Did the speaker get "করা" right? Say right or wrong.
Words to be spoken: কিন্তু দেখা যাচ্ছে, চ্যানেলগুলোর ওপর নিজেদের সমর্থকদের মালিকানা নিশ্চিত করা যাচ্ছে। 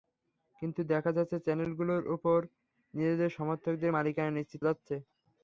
wrong